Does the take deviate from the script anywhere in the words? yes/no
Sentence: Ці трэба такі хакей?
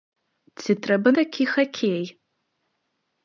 no